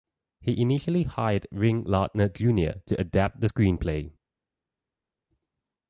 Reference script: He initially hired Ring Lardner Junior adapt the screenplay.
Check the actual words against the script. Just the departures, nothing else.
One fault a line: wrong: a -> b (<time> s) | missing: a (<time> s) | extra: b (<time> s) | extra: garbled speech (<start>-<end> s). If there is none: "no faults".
extra: to (2.8 s)